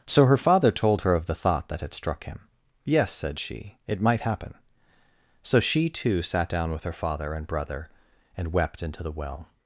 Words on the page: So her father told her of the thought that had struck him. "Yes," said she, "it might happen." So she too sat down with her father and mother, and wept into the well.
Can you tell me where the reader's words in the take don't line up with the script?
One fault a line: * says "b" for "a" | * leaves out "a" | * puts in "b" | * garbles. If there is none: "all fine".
* says "brother" for "mother"